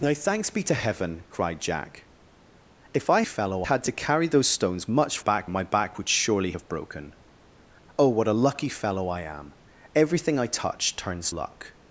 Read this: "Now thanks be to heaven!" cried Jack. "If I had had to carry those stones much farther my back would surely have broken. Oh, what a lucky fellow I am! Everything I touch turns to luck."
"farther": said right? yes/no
no